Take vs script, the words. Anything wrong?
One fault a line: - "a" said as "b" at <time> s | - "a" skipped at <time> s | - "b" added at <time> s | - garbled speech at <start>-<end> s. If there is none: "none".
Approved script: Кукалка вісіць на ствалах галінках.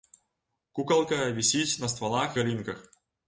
none